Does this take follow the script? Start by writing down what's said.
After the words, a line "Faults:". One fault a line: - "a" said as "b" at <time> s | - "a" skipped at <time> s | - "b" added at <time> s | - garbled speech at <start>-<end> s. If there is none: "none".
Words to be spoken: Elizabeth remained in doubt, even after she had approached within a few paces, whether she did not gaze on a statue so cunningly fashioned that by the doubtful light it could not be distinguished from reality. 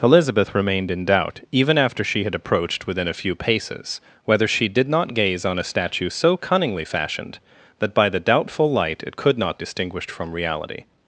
Elizabeth remained in doubt, even after she had approached within a few paces, whether she did not gaze on a statue so cunningly fashioned that by the doubtful light it could not distinguished from reality.
Faults:
- "be" skipped at 9.6 s